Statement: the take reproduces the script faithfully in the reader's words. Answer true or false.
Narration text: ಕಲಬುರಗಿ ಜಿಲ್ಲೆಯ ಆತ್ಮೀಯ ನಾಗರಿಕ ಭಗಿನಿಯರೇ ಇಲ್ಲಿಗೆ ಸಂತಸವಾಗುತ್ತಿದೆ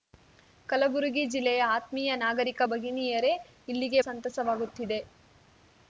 true